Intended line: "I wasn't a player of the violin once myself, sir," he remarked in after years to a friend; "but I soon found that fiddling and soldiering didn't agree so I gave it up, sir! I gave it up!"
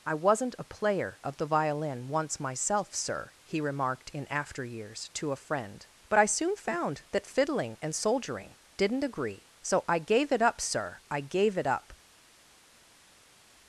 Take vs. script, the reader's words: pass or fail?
pass